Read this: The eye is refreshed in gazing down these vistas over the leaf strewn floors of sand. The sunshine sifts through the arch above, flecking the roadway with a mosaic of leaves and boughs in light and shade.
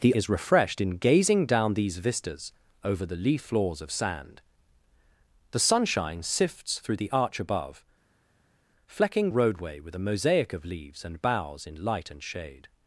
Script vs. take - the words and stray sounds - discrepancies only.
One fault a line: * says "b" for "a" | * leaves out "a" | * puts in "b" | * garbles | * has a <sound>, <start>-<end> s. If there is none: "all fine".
* leaves out "eye"
* leaves out "strewn"
* leaves out "the"